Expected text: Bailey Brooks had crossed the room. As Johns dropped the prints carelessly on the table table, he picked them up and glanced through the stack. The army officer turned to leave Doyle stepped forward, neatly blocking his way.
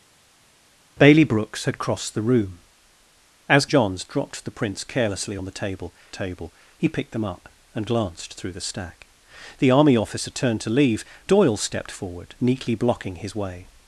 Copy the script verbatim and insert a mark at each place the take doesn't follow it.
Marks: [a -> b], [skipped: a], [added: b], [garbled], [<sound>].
Bailey Brooks had crossed the room. As Johns dropped the prints carelessly on the table table, he picked them up and glanced through the stack. The army officer turned to leave Doyle stepped forward, neatly blocking his way.